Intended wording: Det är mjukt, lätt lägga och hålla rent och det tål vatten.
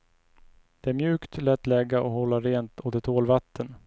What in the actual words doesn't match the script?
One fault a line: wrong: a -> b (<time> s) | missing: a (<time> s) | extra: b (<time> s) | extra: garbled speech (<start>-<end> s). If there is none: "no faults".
no faults